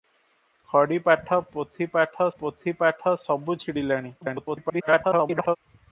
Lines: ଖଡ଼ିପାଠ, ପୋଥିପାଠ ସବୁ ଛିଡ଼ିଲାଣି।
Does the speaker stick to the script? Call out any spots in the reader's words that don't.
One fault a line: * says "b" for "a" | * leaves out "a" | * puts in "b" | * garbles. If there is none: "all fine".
* puts in "ପୋଥିପାଠ"
* garbles